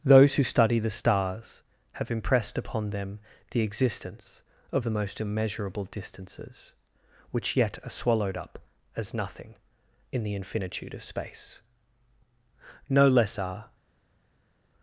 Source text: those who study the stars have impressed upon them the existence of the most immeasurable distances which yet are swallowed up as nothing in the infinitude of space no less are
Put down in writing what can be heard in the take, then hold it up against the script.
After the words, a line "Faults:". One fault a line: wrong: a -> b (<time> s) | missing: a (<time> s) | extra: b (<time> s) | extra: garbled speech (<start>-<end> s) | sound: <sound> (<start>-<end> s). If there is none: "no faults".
those who study the stars have impressed upon them the existence of the most immeasurable distances which yet are swallowed up as nothing in the infinitude of space no less are
Faults:
no faults